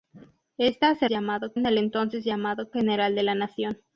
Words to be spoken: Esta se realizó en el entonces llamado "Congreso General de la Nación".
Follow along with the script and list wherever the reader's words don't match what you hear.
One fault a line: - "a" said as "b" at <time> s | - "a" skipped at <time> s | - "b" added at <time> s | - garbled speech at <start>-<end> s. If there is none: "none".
- "realizó" said as "llamado" at 1.1 s
- "Congreso" skipped at 2.7 s